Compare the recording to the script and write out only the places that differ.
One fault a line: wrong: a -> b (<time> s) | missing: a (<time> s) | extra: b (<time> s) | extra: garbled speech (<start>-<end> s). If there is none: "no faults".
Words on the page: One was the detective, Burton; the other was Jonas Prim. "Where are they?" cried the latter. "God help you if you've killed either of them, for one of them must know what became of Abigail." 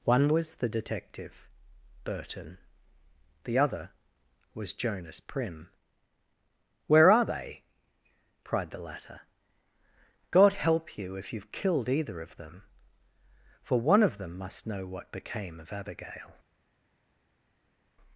no faults